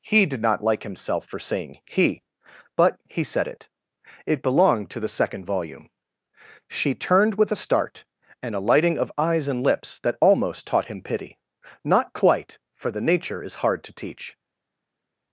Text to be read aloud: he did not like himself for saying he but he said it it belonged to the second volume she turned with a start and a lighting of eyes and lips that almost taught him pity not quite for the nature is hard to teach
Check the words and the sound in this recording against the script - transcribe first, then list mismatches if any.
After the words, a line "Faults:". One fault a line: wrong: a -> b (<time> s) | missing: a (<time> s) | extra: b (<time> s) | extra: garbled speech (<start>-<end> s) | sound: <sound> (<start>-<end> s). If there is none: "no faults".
he did not like himself for saying he but he said it it belonged to the second volume she turned with a start and a lighting of eyes and lips that almost taught him pity not quite for the nature is hard to teach
Faults:
no faults